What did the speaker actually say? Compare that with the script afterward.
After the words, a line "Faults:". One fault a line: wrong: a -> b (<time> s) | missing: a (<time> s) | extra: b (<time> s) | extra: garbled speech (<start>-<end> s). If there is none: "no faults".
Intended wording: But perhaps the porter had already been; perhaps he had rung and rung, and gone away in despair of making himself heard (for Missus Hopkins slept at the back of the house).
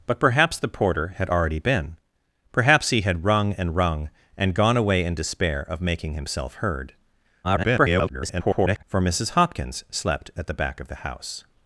But perhaps the porter had already been; perhaps he had rung and rung, and gone away in despair of making himself heard [garbled] (for Missus Hopkins slept at the back of the house).
Faults:
extra: garbled speech (7.4-8.8 s)